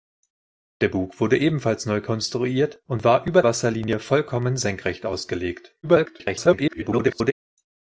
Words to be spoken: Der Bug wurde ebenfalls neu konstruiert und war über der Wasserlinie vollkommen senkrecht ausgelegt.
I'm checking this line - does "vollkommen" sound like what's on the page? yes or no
yes